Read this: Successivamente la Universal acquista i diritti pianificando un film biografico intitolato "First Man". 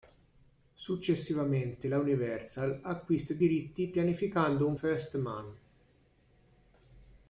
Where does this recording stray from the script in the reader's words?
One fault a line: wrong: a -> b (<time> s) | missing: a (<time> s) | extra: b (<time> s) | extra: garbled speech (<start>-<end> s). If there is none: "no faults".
missing: film biografico intitolato (4.8 s)